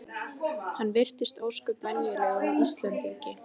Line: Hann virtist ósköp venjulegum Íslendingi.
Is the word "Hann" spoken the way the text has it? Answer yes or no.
yes